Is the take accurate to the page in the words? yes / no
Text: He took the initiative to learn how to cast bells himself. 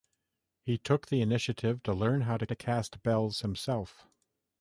no